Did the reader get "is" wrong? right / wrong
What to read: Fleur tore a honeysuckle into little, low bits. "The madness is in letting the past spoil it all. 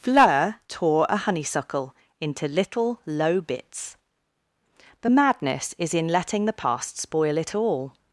right